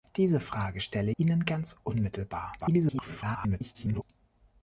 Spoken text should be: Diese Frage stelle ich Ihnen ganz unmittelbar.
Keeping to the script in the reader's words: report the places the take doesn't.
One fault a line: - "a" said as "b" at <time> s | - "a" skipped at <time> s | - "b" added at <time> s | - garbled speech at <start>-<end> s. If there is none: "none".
- "ich" skipped at 1.1 s
- garbled speech at 2.6-4.0 s